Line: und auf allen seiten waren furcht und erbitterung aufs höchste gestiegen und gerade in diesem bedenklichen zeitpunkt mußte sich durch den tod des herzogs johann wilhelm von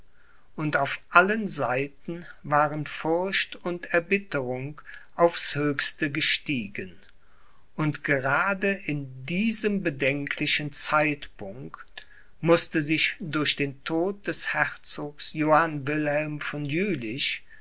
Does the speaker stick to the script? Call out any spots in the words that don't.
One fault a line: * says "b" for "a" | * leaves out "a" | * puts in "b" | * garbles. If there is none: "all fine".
all fine